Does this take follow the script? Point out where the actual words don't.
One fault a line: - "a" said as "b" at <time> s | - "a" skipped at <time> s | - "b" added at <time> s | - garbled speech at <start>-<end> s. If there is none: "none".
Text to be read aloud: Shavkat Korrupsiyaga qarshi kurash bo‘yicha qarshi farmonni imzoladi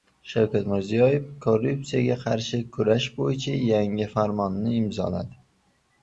- "Mirziyoyev" added at 0.7 s
- "qarshi" said as "yangi" at 3.7 s